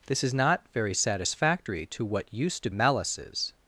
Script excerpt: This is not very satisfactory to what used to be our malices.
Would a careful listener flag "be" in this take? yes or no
yes